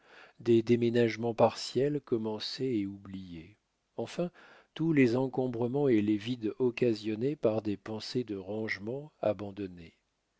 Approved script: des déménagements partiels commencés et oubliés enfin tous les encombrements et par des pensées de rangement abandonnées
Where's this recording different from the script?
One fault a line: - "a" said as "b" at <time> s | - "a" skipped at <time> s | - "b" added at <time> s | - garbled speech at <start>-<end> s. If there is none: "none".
- "les vides occasionnés" added at 6.0 s